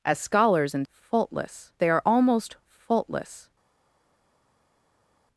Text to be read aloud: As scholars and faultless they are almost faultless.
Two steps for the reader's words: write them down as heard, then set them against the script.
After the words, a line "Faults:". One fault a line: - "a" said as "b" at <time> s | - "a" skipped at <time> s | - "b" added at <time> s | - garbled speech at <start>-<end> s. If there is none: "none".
As scholars and faultless they are almost faultless.
Faults:
none